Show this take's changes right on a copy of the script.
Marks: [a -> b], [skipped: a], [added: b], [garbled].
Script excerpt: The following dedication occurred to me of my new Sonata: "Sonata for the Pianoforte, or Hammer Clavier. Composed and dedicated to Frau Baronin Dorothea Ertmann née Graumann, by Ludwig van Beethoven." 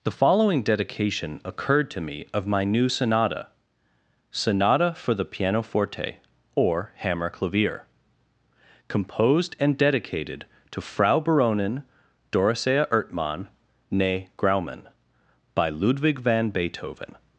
The following dedication occurred to me of my new Sonata: "Sonata for the Pianoforte, or Hammer Clavier. Composed and dedicated to Frau Baronin Dorothea Ertmann née Graumann, by Ludwig van Beethoven."